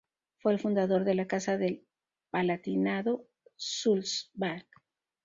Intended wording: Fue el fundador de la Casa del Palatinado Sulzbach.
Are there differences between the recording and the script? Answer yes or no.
no